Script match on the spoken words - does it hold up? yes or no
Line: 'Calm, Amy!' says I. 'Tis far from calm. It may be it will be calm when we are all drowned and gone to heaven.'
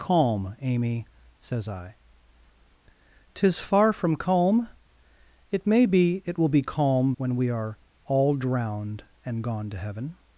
yes